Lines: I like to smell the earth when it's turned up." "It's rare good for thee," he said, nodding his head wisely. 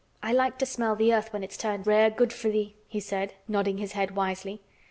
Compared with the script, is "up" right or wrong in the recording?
wrong